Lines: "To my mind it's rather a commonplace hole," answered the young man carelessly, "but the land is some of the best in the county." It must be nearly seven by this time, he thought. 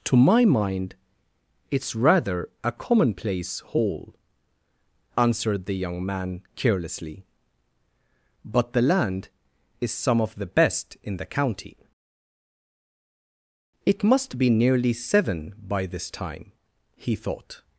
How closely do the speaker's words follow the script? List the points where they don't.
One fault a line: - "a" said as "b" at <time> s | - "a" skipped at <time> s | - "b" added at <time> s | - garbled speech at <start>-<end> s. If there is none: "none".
none